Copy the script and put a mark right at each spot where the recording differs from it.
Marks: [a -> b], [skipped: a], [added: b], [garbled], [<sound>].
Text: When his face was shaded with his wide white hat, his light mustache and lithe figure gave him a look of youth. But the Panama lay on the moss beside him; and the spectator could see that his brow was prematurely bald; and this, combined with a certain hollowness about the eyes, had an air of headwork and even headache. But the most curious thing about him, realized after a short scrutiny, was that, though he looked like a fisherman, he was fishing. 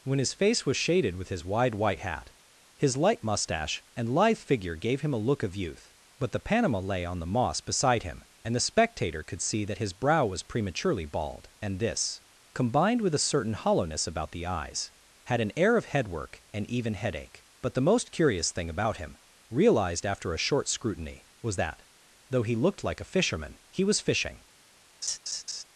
When his face was shaded with his wide white hat, his light mustache and lithe figure gave him a look of youth. But the Panama lay on the moss beside him; and the spectator could see that his brow was prematurely bald; and this, combined with a certain hollowness about the eyes, had an air of headwork and even headache. But the most curious thing about him, realized after a short scrutiny, was that, though he looked like a fisherman, he was fishing. [laugh]